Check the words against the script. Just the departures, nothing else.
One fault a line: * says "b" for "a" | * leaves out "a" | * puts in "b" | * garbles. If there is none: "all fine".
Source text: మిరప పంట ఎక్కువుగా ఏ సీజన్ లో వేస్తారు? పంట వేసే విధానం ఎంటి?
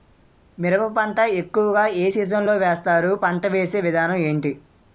all fine